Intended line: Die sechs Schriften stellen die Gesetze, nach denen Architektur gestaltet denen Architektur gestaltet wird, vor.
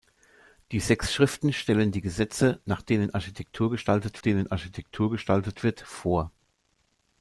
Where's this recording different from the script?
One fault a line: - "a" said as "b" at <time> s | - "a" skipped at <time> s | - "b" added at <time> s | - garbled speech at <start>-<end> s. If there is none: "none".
none